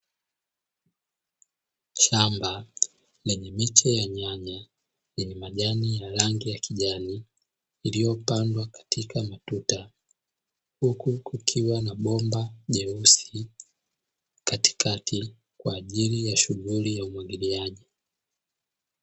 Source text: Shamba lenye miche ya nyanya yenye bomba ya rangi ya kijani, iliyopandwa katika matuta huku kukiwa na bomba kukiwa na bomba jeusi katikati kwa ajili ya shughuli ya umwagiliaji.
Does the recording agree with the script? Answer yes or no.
no